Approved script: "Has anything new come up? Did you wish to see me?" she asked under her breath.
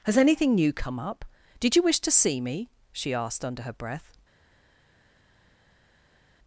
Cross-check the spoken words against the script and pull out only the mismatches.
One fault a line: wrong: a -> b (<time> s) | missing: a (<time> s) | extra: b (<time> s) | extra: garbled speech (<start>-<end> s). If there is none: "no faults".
no faults